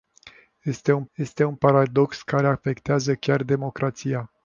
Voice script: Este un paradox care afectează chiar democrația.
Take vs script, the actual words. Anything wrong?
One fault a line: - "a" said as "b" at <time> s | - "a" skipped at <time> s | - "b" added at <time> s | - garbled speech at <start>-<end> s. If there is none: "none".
- "este un" added at 1.2 s